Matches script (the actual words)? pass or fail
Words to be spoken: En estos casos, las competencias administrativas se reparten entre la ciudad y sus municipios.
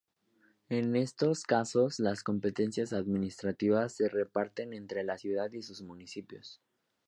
pass